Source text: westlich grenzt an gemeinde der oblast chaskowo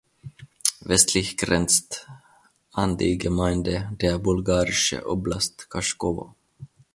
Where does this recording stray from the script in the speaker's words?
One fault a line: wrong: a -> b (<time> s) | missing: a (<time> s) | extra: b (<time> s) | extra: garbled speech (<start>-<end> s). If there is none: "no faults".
extra: die (3.0 s)
extra: bulgarische (4.2 s)